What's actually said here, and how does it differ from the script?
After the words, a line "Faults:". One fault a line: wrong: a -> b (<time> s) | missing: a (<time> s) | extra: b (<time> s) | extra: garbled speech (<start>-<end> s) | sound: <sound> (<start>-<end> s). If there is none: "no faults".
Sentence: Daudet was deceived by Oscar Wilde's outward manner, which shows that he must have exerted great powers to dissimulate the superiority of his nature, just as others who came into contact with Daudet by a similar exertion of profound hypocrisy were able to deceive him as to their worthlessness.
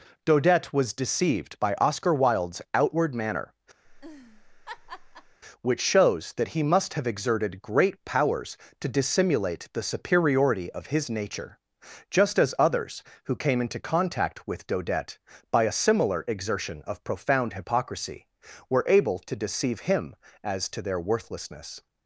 Daudet was deceived by Oscar Wilde's outward manner, which shows that he must have exerted great powers to dissimulate the superiority of his nature, just as others who came into contact with Daudet by a similar exertion of profound hypocrisy were able to deceive him as to their worthlessness.
Faults:
sound: laugh (3.8-5.4 s)